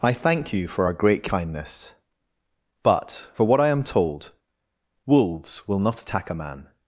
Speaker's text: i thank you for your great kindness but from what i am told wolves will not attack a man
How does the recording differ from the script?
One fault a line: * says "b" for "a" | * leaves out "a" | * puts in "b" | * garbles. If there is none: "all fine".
* says "our" for "your"
* says "for" for "from"